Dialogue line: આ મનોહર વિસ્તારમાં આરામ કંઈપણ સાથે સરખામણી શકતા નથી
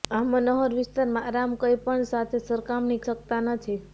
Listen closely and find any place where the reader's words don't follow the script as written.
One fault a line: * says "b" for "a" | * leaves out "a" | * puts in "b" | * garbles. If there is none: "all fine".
all fine